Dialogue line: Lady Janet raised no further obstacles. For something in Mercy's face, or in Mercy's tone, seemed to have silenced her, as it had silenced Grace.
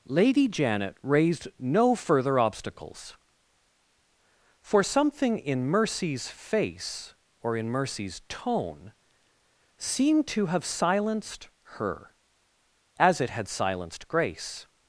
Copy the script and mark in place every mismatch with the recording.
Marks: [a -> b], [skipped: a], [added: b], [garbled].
Lady Janet raised no further obstacles. For something in Mercy's face, or in Mercy's tone, seemed to have silenced her, as it had silenced Grace.